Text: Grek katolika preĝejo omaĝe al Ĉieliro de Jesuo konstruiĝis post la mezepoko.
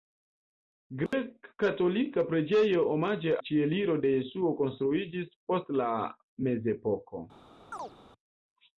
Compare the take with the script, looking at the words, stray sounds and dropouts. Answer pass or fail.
fail